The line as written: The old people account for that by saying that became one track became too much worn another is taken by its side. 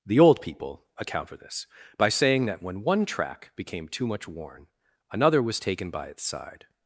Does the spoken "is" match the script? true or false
false